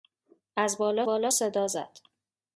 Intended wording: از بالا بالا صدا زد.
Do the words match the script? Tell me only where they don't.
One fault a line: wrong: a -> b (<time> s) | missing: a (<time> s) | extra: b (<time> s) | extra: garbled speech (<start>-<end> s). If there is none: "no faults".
no faults